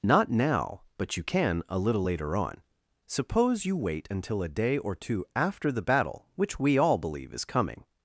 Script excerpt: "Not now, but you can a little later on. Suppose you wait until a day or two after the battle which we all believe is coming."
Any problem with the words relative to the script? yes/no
no